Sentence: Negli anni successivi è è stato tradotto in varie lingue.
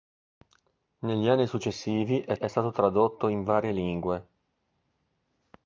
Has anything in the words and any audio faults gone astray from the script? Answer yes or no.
no